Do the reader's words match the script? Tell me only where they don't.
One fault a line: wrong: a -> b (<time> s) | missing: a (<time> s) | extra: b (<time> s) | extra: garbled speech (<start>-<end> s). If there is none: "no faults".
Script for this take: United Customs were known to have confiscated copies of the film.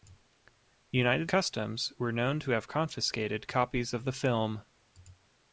no faults